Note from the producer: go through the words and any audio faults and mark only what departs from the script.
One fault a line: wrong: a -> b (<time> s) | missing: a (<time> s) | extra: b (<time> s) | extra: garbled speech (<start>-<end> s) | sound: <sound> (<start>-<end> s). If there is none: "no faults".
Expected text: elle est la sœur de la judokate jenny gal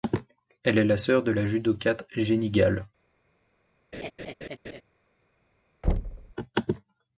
sound: laugh (3.9-4.8 s)
sound: thud (5.8-6.3 s)